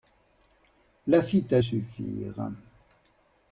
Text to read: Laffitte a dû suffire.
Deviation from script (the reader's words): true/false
true